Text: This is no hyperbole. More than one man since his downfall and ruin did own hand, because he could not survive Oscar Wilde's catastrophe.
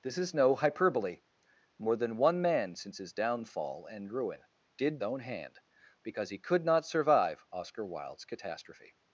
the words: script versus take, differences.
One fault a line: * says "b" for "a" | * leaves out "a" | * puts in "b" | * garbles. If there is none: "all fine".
all fine